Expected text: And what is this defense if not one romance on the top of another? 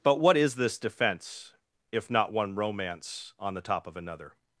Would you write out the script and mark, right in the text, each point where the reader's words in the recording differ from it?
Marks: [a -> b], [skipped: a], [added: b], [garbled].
[And -> But] what is this defense if not one romance on the top of another?